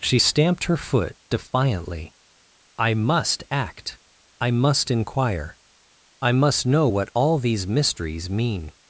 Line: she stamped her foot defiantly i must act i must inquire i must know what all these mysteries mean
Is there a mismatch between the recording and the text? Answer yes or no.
no